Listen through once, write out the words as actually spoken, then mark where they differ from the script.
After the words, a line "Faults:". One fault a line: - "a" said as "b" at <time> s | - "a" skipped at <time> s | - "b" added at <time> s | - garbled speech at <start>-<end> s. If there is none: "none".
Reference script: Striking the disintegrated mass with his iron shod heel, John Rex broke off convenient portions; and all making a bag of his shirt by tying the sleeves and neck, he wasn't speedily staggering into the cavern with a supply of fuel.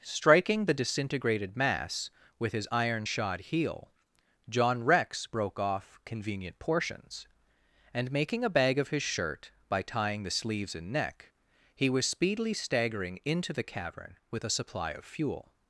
Striking the disintegrated mass with his iron shod heel, John Rex broke off convenient portions; and making a bag of his shirt by tying the sleeves and neck, he was speedily staggering into the cavern with a supply of fuel.
Faults:
- "all" skipped at 8.1 s
- "wasn't" said as "was" at 11.9 s